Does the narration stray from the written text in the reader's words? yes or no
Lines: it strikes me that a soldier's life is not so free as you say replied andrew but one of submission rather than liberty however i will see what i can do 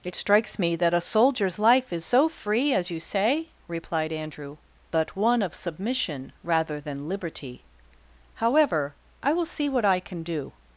yes